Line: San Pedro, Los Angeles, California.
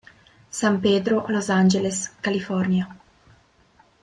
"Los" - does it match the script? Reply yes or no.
yes